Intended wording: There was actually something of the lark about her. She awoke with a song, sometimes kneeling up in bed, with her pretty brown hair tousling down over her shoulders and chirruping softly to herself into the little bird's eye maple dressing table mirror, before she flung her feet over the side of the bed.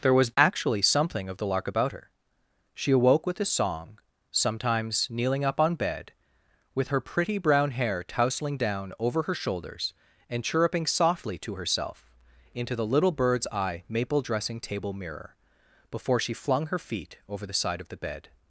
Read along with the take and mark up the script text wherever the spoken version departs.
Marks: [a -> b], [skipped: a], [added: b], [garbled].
There was actually something of the lark about her. She awoke with a song, sometimes kneeling up [in -> on] bed, with her pretty brown hair tousling down over her shoulders and chirruping softly to herself into the little bird's eye maple dressing table mirror, before she flung her feet over the side of the bed.